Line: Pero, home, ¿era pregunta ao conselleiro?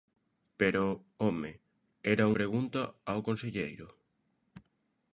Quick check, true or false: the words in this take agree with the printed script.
true